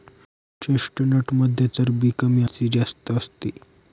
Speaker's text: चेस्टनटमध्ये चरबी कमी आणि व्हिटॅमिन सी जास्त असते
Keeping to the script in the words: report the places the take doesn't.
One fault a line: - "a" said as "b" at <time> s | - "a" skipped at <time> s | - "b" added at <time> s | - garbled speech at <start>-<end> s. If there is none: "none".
- "आणि व्हिटॅमिन" skipped at 2.4 s